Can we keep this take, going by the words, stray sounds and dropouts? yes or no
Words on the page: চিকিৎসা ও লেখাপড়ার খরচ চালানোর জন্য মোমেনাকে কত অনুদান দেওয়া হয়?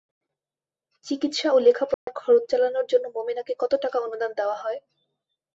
no